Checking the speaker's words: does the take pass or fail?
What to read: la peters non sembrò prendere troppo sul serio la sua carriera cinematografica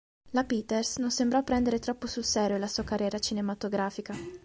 pass